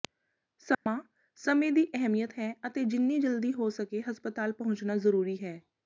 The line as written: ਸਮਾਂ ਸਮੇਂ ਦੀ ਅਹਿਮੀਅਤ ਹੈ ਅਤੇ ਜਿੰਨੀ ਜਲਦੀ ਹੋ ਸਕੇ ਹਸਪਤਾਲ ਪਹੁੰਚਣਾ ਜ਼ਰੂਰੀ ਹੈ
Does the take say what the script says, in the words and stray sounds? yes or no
no